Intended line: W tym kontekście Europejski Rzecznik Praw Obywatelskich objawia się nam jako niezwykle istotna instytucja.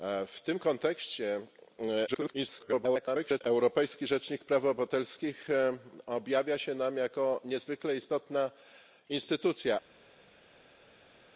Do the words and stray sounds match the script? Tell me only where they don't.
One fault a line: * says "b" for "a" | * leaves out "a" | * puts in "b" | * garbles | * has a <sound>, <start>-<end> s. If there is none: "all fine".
* garbles